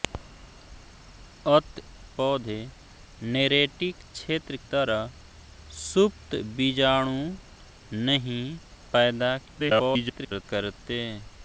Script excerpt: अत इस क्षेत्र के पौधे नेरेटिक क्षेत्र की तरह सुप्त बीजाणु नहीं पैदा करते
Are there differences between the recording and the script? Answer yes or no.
yes